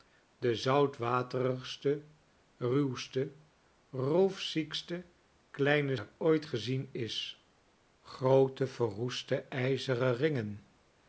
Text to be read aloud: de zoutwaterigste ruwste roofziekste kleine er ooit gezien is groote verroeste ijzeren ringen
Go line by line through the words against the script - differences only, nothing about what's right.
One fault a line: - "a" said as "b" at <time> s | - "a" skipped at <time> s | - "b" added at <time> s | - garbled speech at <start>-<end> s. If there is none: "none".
none